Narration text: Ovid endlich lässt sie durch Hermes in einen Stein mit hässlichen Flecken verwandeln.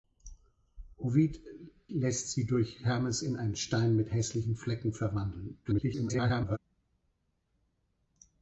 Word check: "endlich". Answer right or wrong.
wrong